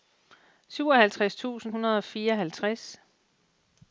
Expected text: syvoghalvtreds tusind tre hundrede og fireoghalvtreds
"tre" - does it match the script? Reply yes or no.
no